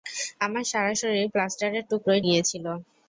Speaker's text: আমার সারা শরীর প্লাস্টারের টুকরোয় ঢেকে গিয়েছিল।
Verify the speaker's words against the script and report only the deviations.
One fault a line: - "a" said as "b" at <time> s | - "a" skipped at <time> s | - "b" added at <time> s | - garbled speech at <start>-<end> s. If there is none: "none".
- "ঢেকে" skipped at 2.2 s